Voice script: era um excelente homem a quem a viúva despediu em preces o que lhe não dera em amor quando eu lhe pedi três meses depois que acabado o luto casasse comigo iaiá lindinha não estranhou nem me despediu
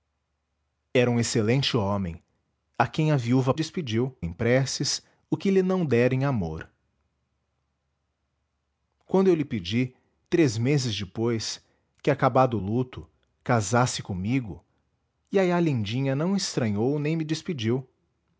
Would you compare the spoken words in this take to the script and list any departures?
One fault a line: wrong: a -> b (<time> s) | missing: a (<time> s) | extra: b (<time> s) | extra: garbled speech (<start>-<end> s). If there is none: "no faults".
no faults